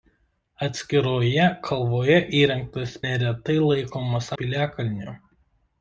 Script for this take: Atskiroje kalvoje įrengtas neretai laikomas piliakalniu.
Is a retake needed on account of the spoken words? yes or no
no